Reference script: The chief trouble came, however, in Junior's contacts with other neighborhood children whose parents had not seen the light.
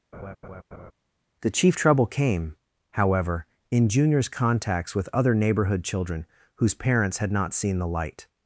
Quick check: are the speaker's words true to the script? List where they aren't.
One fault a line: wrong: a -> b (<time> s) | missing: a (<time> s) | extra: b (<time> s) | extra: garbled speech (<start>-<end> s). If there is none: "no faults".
no faults